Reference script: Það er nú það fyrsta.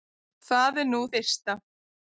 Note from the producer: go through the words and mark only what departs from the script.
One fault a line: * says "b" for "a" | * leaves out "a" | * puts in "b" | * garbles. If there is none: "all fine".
* leaves out "það"